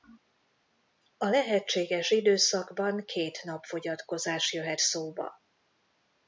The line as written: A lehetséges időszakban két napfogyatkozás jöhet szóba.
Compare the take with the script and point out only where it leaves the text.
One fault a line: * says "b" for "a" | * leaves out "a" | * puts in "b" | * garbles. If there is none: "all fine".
all fine